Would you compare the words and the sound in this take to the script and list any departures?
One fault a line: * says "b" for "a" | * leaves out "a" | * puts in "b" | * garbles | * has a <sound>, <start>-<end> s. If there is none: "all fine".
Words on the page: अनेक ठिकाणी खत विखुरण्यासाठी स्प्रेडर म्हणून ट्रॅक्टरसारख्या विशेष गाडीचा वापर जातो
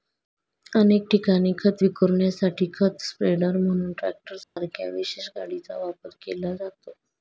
* puts in "खत"
* has a dropout, 4.4-4.6 s
* puts in "केला"